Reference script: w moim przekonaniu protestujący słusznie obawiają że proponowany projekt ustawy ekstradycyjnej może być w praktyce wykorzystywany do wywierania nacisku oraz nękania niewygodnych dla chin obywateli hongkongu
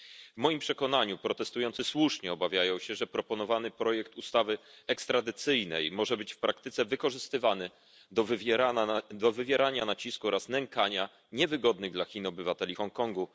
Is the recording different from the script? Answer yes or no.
yes